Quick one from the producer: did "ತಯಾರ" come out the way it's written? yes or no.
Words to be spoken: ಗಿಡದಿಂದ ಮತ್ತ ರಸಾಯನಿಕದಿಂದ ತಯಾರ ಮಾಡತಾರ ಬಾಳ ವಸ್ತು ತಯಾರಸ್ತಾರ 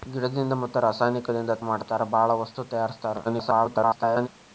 no